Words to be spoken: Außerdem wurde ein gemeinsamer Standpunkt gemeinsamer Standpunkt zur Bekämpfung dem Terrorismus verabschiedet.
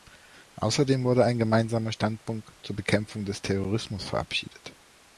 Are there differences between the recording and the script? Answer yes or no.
yes